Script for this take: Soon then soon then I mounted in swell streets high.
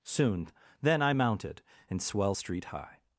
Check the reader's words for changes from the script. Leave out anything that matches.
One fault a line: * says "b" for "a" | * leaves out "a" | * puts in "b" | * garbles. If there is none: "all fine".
* leaves out "soon then"
* says "street" for "streets"